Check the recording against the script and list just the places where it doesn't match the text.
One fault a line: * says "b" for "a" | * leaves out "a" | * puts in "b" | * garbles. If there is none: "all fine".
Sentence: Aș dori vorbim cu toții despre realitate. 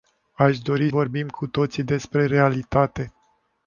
all fine